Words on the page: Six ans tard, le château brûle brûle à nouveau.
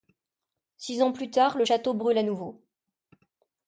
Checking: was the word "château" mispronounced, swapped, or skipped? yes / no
no